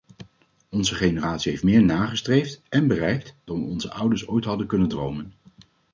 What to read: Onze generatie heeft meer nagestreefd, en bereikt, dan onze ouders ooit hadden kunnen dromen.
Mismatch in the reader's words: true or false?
false